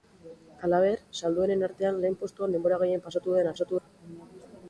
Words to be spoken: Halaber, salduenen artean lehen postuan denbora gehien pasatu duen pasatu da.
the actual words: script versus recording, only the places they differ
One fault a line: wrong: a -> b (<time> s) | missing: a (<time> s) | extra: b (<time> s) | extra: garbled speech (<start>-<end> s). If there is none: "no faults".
no faults